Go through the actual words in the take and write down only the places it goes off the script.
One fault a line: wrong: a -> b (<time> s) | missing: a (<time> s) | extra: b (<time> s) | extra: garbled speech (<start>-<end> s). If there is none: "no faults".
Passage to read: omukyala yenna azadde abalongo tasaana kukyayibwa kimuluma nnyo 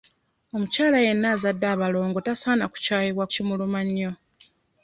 no faults